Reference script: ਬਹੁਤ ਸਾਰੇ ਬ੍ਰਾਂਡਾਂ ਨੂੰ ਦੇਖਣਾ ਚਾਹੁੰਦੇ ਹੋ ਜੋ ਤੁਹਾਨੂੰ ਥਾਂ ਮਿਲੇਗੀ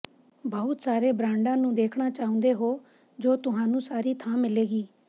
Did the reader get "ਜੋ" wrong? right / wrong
right